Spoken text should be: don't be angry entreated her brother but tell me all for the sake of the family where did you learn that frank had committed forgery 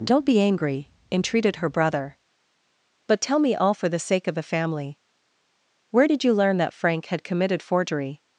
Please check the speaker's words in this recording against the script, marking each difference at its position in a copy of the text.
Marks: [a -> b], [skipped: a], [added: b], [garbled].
don't be angry entreated her brother but tell me all for the sake of the family where did you learn that frank had committed forgery